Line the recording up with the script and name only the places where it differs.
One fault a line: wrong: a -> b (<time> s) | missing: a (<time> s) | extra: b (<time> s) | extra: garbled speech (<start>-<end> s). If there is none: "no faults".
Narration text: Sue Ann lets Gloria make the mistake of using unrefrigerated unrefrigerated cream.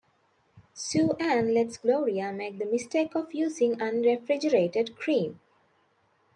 missing: unrefrigerated (4.9 s)